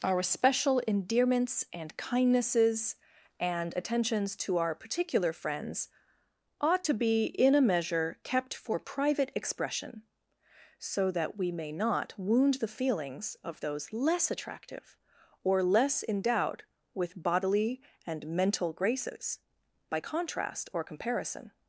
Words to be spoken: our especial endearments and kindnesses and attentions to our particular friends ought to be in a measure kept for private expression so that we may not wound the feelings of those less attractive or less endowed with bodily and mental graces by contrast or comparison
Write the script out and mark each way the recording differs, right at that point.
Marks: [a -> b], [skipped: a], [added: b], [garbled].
our [especial -> special] endearments and kindnesses and attentions to our particular friends ought to be in a measure kept for private expression so that we may not wound the feelings of those less attractive or less endowed with bodily and mental graces by contrast or comparison